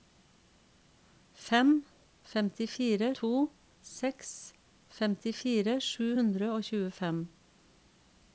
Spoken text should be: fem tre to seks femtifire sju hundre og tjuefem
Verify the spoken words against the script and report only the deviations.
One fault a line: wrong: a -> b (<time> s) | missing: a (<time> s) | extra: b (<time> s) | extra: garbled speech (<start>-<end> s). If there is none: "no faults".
wrong: tre -> femtifire (2.3 s)